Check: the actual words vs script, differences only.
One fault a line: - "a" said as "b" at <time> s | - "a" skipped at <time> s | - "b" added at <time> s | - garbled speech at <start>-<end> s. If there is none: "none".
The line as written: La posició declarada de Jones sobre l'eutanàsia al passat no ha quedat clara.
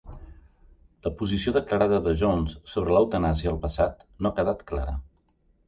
none